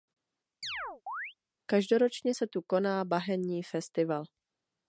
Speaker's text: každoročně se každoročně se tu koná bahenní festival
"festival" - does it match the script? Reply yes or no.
yes